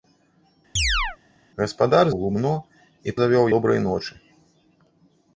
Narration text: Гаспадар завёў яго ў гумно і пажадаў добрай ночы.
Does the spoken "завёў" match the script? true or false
false